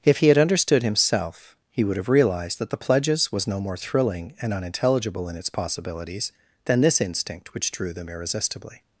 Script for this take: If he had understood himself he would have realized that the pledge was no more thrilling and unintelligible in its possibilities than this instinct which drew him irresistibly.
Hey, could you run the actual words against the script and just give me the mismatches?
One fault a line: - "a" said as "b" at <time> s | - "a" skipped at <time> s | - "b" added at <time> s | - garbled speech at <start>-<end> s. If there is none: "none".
- "pledge" said as "pledges" at 2.8 s
- "him" said as "them" at 7.9 s